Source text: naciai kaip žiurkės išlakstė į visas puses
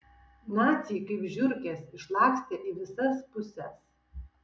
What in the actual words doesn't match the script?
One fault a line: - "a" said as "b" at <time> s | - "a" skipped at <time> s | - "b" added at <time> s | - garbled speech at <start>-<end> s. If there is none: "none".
none